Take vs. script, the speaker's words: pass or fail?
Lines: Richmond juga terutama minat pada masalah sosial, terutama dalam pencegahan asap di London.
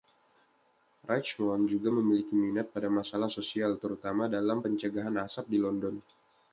fail